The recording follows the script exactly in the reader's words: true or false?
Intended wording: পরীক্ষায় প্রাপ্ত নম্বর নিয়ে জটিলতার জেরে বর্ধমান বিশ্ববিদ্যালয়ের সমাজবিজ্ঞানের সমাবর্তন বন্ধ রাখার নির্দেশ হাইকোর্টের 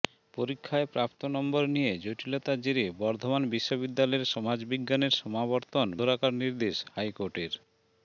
false